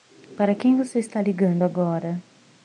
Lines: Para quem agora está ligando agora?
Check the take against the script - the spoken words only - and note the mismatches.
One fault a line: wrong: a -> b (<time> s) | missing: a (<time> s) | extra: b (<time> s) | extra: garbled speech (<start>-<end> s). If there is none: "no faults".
wrong: agora -> você (0.8 s)